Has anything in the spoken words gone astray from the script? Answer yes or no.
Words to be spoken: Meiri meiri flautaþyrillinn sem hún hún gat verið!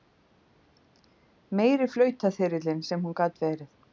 yes